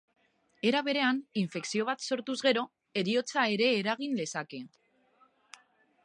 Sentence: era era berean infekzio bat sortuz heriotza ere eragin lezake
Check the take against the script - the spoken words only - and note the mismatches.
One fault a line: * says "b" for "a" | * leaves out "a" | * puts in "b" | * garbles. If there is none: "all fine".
* leaves out "era"
* puts in "gero"